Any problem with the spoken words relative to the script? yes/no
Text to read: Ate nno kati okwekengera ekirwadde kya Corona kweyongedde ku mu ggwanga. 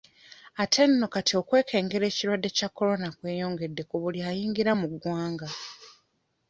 yes